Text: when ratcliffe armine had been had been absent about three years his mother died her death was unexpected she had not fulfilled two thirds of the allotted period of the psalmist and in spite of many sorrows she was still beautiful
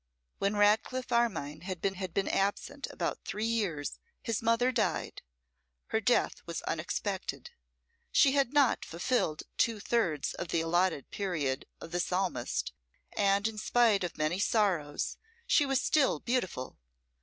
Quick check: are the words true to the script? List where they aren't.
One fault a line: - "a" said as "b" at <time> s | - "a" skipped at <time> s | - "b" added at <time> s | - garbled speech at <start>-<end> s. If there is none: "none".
none